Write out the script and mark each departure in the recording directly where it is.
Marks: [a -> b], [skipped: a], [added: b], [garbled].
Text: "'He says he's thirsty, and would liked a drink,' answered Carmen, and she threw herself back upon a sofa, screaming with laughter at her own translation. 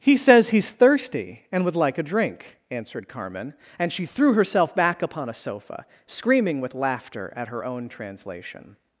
"'He says he's thirsty, and would [liked -> like] a drink,' answered Carmen, and she threw herself back upon a sofa, screaming with laughter at her own translation.